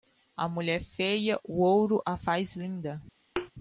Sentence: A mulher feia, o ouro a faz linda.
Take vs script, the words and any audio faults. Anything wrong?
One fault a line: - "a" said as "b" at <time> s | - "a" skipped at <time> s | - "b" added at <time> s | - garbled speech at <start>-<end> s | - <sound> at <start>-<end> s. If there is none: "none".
- thud at 3.4-3.5 s